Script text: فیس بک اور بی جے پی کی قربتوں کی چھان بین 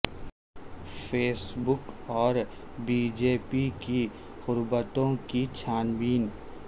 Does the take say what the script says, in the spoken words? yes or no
yes